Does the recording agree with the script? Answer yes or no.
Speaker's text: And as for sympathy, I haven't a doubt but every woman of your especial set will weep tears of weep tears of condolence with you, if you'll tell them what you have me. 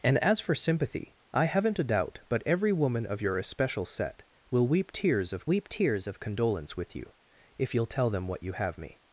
yes